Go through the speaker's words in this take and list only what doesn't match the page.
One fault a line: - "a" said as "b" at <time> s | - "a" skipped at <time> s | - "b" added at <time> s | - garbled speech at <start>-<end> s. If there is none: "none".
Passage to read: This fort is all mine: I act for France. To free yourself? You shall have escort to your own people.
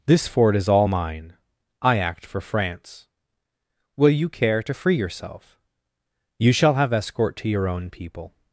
- "Will you care" added at 4.0 s